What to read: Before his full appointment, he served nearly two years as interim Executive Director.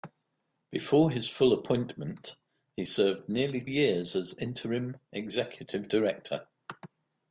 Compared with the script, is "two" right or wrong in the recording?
wrong